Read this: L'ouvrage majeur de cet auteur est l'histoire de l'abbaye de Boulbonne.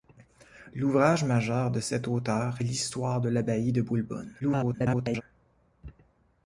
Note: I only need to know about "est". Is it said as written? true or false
false